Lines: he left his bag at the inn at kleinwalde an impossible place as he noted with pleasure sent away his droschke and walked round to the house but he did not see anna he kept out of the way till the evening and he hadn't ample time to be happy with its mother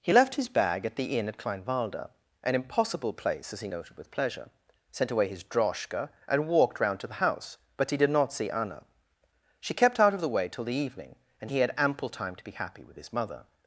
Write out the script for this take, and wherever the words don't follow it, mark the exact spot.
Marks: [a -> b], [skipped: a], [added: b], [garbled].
he left his bag at the inn at kleinwalde an impossible place as he noted with pleasure sent away his droschke and walked round to the house but he did not see anna [he -> she] kept out of the way till the evening and he [hadn't -> had] ample time to be happy with [its -> his] mother